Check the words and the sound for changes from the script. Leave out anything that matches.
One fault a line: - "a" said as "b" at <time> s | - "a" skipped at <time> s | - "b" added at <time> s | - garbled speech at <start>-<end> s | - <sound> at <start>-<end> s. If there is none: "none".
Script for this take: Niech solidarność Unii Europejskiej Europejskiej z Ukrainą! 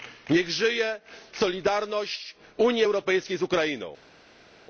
- "żyje" added at 0.5 s
- "Europejskiej" skipped at 3.4 s